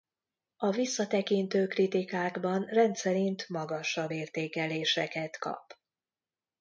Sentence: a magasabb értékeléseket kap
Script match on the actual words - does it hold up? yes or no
no